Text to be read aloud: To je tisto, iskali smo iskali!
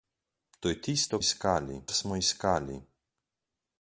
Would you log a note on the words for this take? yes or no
no